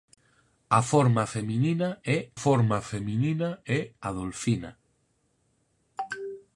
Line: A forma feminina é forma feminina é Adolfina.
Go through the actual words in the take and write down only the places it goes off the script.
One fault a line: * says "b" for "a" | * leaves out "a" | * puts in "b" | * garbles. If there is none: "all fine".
all fine